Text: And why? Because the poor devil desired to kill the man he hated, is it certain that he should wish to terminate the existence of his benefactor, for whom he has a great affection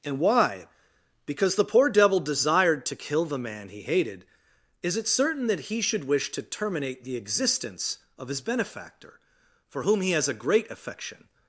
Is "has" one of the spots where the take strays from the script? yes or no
no